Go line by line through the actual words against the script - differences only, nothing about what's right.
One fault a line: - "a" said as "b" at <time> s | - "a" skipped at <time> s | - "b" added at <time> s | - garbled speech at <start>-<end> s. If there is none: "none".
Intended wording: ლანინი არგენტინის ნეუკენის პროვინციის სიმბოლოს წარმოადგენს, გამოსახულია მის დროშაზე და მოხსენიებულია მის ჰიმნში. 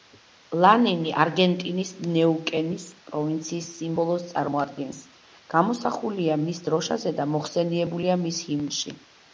none